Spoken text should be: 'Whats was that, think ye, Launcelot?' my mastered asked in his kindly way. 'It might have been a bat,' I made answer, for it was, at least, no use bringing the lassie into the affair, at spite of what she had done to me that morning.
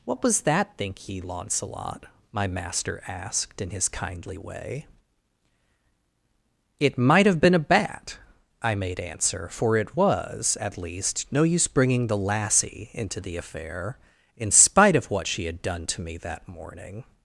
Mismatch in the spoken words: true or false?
true